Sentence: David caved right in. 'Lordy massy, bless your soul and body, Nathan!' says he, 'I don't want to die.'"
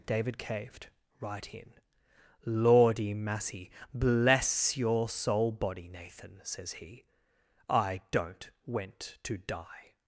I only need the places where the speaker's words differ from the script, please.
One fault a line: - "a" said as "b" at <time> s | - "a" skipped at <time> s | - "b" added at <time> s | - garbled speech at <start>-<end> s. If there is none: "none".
- "and" skipped at 5.5 s
- "want" said as "went" at 8.7 s